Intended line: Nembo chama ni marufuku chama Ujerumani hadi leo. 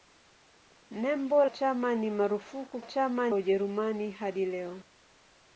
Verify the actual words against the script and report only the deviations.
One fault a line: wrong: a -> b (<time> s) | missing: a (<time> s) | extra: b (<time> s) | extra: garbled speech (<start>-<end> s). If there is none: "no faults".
no faults